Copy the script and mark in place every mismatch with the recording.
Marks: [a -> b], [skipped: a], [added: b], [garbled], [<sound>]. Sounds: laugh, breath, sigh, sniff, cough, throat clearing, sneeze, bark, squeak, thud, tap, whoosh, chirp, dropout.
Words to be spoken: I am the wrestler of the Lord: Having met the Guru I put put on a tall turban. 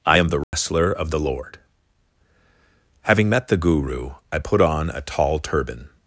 I am the wrestler [dropout] of the Lord: Having met the Guru I put [skipped: put] on a tall turban.